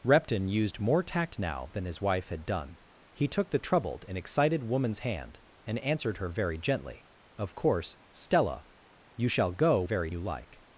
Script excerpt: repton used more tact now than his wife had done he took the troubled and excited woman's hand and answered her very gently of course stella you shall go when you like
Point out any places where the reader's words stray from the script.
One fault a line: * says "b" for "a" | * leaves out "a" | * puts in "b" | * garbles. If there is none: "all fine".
* says "very" for "when"